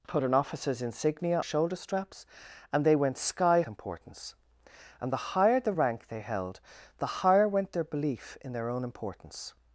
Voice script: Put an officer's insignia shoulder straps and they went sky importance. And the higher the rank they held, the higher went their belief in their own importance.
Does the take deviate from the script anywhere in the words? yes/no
no